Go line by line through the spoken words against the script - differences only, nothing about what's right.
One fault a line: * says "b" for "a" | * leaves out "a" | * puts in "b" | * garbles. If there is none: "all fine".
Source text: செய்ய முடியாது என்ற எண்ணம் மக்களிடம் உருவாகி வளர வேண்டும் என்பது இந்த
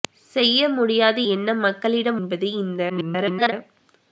* leaves out "என்ற"
* leaves out "உருவாகி வளர வேண்டும்"
* garbles